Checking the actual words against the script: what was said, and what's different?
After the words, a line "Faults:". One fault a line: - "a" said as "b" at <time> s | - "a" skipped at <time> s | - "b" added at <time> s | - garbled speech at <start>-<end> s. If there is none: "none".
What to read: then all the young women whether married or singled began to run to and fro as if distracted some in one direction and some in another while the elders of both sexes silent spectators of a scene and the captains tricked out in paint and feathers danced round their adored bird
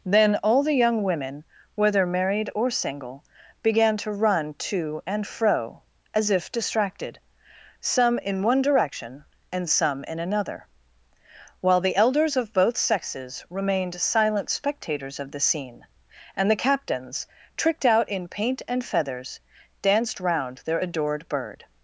then all the young women whether married or single began to run to and fro as if distracted some in one direction and some in another while the elders of both sexes remained silent spectators of the scene and the captains tricked out in paint and feathers danced round their adored bird
Faults:
- "singled" said as "single" at 2.7 s
- "remained" added at 13.5 s
- "a" said as "the" at 15.3 s